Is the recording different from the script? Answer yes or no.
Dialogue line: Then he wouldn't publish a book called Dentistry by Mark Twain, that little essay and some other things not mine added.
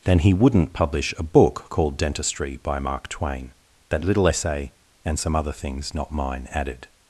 no